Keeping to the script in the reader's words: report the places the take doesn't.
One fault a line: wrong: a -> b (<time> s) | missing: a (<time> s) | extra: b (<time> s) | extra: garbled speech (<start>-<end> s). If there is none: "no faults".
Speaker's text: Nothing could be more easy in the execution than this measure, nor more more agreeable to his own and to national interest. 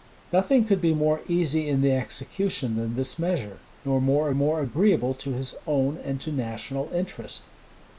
no faults